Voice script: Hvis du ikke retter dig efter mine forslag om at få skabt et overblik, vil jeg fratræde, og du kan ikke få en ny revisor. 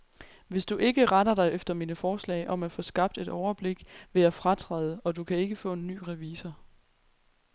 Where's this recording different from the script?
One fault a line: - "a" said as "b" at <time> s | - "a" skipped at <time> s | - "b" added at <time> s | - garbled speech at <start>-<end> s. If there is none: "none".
none